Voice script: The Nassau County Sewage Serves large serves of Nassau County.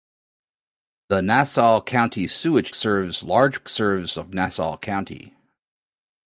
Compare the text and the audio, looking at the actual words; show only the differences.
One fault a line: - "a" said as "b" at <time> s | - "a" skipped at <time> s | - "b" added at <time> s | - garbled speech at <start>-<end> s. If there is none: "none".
none